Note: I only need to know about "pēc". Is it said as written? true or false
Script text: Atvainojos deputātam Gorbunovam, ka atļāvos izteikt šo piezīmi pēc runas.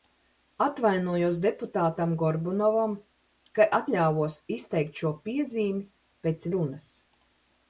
true